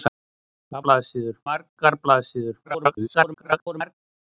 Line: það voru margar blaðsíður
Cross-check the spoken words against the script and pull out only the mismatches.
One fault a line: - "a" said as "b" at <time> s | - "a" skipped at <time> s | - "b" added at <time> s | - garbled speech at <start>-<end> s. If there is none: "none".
- "voru" said as "blaðsíður" at 0.9 s
- garbled speech at 2.6-3.9 s